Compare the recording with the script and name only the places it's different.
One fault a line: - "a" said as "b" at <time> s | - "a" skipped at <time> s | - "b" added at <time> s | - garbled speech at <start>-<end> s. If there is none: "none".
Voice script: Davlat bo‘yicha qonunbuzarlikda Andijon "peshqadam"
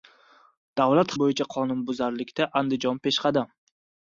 none